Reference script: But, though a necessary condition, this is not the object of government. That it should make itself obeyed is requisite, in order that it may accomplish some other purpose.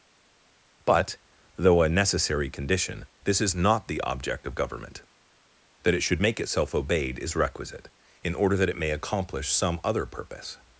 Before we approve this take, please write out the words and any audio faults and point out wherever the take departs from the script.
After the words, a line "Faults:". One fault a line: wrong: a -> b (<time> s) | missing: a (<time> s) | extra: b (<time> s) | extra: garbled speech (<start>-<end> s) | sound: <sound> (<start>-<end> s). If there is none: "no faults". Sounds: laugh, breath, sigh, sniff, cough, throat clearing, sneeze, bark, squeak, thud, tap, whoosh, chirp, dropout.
But, though a necessary condition, this is not the object of government. That it should make itself obeyed is requisite, in order that it may accomplish some other purpose.
Faults:
no faults